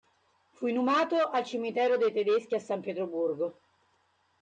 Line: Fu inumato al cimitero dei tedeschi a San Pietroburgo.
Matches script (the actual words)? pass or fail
pass